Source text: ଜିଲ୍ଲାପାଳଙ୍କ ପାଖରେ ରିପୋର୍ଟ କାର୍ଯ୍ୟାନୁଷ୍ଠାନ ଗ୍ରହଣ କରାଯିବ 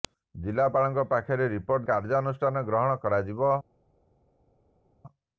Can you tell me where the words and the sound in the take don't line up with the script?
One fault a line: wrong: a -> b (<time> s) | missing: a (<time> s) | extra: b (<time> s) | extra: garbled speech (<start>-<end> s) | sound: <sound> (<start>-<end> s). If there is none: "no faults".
no faults